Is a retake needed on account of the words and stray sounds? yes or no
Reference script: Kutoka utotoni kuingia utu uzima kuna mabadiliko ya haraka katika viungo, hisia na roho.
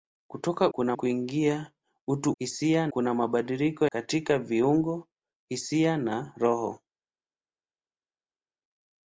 yes